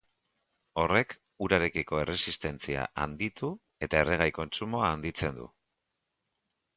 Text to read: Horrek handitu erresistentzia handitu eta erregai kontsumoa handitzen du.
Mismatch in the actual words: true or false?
true